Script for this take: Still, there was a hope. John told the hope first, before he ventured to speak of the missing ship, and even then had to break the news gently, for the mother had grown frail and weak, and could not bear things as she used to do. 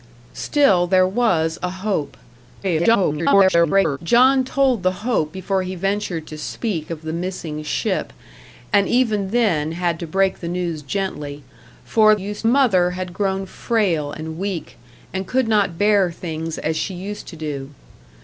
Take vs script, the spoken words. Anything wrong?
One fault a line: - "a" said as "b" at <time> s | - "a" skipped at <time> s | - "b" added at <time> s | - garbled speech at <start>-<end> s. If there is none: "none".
- garbled speech at 2.6-4.0 s
- "first" skipped at 5.3 s
- "the" said as "used" at 12.1 s